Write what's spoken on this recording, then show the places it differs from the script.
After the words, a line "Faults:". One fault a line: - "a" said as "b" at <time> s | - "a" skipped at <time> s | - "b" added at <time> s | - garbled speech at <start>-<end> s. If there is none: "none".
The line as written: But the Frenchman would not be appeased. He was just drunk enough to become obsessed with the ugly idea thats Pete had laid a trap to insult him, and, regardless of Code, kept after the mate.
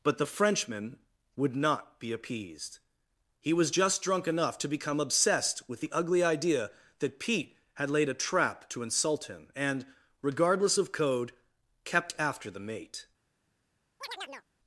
But the Frenchman would not be appeased. He was just drunk enough to become obsessed with the ugly idea that Pete had laid a trap to insult him, and, regardless of Code, kept after the mate.
Faults:
- "thats" said as "that" at 7.0 s